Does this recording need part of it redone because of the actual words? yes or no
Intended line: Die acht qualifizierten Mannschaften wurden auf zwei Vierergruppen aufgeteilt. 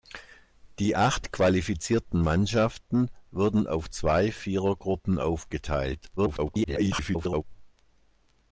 yes